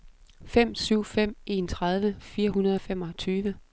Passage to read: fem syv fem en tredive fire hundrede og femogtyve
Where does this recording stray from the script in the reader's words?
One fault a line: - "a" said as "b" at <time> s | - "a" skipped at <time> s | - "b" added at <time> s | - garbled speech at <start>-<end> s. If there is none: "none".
none